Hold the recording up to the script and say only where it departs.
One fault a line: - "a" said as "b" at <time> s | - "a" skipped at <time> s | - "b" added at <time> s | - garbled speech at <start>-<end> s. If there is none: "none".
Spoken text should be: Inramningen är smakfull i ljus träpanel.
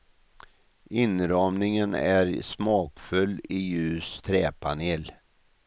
none